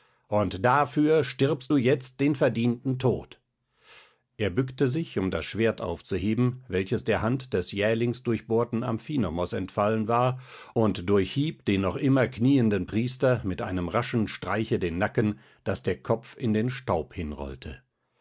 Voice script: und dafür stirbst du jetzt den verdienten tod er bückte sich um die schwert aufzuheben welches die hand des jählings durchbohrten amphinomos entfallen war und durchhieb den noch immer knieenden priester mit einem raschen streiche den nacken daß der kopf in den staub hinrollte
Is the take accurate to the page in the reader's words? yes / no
no